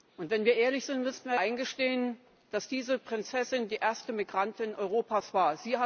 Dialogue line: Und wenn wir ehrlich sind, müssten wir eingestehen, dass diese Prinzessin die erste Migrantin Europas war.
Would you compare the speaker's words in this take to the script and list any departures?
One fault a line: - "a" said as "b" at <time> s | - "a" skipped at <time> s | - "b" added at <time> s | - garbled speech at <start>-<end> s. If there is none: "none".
none